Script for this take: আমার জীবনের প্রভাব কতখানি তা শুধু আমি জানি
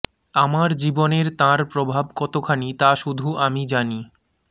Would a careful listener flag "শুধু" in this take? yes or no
no